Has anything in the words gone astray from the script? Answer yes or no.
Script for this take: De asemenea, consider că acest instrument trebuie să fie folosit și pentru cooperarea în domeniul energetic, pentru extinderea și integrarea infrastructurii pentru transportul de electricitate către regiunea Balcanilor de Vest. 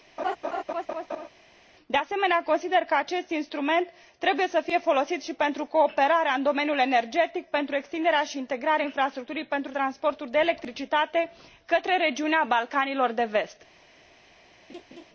no